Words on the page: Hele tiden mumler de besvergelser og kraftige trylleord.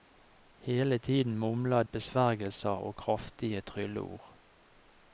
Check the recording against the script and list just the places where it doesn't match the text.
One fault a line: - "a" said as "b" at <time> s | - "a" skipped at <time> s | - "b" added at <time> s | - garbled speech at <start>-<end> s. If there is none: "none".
- "de" skipped at 1.8 s